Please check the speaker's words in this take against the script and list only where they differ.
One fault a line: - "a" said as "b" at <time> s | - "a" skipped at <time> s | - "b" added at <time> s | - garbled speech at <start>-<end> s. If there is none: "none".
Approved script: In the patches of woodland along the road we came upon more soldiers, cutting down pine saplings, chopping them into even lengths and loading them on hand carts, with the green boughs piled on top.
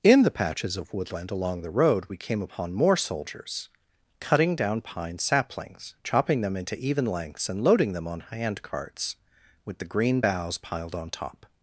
none